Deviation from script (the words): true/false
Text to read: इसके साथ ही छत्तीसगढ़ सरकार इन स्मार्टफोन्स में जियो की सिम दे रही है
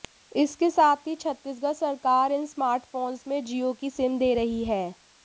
false